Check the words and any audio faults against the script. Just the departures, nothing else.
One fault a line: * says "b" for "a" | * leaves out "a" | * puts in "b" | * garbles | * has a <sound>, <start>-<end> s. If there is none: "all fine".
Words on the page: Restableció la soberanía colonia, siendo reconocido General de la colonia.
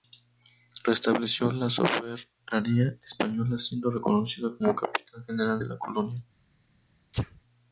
* says "española" for "colonia"
* puts in "como Capitán"
* has a sneeze, 7.1-7.4 s